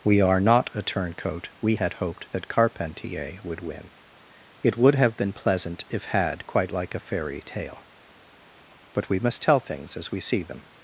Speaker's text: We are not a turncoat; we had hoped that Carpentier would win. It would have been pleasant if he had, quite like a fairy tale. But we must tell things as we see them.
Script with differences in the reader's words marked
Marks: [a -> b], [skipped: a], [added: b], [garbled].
We are not a turncoat; we had hoped that Carpentier would win. It would have been pleasant if [skipped: he] had, quite like a fairy tale. But we must tell things as we see them.